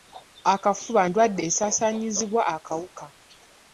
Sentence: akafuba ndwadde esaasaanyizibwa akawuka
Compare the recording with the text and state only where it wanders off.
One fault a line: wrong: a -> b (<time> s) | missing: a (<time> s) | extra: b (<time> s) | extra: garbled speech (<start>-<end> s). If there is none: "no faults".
no faults